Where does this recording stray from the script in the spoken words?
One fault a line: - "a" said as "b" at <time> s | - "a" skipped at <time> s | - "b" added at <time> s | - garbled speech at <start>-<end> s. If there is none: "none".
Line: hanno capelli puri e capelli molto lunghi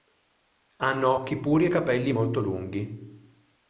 - "capelli" said as "occhi" at 1.1 s